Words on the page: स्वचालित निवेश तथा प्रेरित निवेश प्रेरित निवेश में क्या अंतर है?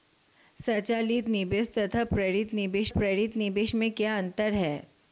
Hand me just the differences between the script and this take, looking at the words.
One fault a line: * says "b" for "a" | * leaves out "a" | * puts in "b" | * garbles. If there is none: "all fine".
all fine